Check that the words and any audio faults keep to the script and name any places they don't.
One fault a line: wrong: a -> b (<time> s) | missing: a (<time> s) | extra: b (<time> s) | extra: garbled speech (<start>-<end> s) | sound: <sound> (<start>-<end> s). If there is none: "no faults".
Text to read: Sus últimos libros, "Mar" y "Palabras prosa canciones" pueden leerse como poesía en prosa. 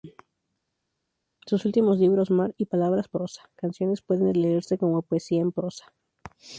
no faults